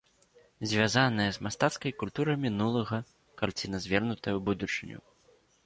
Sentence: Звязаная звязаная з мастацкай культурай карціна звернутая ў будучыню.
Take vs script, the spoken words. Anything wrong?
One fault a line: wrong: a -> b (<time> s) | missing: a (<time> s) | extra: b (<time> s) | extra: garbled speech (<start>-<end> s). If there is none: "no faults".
missing: звязаная (1.3 s)
extra: мінулага (2.5 s)